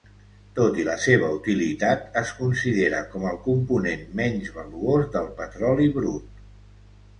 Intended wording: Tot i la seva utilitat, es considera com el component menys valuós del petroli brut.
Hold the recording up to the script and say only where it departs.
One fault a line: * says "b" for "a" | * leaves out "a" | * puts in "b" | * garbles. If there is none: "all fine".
all fine